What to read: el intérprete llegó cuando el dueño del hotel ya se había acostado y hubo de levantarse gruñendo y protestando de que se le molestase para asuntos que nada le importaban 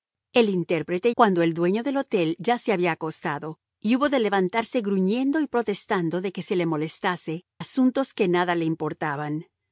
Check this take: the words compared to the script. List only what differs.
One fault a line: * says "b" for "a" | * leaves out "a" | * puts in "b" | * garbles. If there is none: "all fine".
* leaves out "llegó"
* leaves out "para"